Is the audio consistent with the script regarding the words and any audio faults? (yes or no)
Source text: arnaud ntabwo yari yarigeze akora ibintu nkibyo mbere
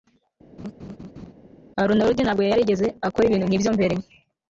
no